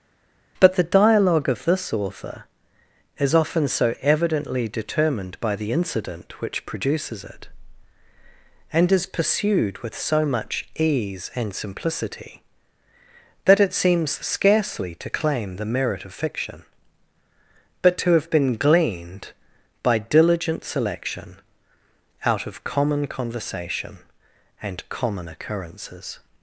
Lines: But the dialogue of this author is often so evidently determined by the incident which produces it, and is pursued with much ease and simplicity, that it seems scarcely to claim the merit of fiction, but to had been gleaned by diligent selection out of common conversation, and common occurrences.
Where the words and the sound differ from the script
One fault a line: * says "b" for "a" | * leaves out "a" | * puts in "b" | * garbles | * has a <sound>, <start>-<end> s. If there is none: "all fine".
* puts in "so"
* says "have" for "had"